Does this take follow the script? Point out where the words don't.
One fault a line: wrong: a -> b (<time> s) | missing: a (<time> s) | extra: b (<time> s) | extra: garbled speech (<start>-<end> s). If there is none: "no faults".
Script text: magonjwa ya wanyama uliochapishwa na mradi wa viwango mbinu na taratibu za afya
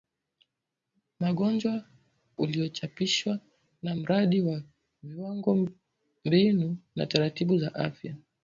missing: ya wanyama (1.8 s)